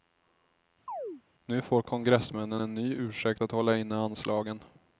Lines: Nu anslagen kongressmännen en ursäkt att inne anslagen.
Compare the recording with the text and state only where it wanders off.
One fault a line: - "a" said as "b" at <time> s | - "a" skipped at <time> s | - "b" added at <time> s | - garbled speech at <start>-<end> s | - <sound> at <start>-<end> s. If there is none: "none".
- chirp at 0.9-1.2 s
- "anslagen" said as "får" at 1.6 s
- "ny" added at 2.7 s
- "hålla" added at 3.5 s